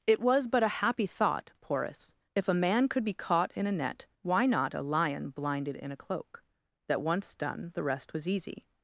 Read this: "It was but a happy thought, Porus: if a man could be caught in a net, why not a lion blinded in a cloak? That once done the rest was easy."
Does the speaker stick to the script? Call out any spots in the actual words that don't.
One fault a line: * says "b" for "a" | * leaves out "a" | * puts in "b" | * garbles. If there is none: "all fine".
all fine